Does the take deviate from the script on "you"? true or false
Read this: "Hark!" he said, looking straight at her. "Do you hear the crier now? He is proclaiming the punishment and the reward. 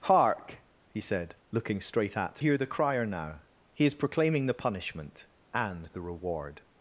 true